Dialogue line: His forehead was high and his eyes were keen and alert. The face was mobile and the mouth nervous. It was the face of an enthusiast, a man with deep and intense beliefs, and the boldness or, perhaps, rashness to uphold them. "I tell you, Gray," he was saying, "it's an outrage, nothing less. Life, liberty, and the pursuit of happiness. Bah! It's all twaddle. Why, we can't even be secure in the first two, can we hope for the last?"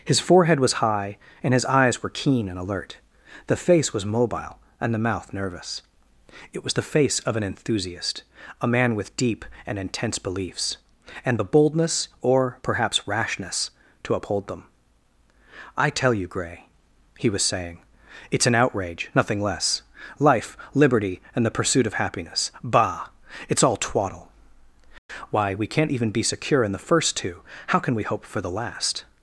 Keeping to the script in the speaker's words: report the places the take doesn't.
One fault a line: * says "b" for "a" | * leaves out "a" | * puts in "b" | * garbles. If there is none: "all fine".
* puts in "how"